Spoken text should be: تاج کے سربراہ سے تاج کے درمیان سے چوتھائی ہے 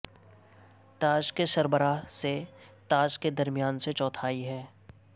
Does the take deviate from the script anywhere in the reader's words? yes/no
no